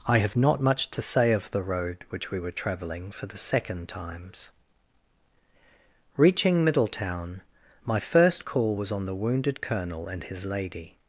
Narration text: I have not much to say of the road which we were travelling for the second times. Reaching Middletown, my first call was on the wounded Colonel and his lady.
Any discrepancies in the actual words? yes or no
no